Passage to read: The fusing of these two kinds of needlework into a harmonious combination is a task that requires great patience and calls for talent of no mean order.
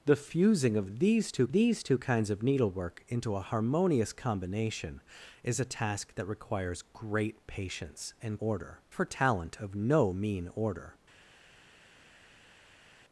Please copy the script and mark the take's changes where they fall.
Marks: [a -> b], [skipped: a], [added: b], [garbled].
The fusing of these two [added: these two] kinds of needlework into a harmonious combination is a task that requires great patience and [calls -> order] for talent of no mean order.